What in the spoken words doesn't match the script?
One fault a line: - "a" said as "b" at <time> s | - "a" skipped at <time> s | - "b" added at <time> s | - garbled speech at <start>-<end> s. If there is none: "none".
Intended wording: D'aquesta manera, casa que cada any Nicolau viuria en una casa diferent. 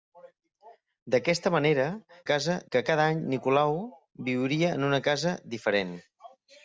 none